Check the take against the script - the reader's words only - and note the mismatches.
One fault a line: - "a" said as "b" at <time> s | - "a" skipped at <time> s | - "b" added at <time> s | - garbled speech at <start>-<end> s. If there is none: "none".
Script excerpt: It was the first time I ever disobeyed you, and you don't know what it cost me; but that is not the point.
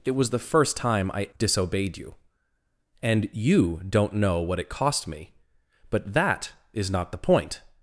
- "ever" skipped at 1.3 s